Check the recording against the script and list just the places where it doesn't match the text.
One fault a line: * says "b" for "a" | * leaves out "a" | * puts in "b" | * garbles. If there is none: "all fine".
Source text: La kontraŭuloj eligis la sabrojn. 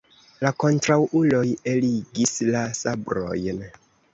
all fine